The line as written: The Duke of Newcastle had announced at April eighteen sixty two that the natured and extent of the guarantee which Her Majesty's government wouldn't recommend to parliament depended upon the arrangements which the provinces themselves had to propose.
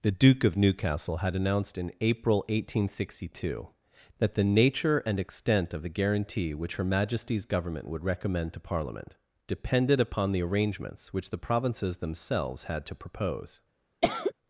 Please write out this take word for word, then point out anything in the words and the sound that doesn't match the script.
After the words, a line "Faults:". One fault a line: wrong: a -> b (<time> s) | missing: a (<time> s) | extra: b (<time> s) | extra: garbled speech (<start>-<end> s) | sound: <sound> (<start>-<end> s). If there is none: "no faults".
The Duke of Newcastle had announced in April eighteen sixty two that the nature and extent of the guarantee which Her Majesty's government would recommend to parliament depended upon the arrangements which the provinces themselves had to propose.
Faults:
wrong: at -> in (1.8 s)
wrong: natured -> nature (4.4 s)
wrong: wouldn't -> would (7.9 s)
sound: cough (14.0-14.3 s)